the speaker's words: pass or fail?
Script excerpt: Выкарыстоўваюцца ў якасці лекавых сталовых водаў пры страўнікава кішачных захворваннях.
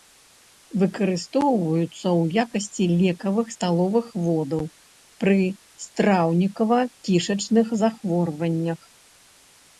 pass